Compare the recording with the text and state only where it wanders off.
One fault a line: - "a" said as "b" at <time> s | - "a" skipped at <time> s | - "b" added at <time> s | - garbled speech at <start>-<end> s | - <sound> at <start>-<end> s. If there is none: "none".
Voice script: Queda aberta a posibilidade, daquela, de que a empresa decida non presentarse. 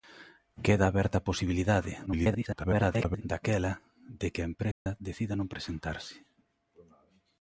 - garbled speech at 2.1-3.2 s
- dropout at 4.7-4.9 s